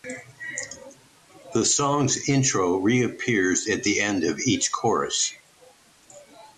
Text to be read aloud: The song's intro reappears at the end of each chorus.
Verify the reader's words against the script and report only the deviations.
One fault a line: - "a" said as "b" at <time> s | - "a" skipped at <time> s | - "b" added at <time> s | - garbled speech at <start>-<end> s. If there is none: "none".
none